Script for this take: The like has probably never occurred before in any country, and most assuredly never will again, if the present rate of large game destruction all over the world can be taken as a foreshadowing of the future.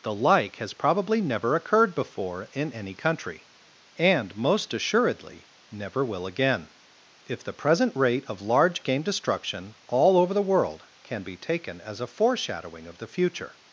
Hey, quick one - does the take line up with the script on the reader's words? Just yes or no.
yes